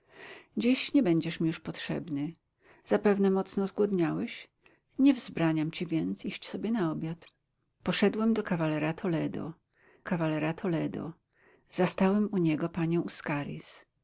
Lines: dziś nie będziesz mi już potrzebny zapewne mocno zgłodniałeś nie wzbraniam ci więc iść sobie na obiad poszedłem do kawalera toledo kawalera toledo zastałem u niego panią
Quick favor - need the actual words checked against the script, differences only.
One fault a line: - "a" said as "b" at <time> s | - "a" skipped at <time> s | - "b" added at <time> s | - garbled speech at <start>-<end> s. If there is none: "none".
none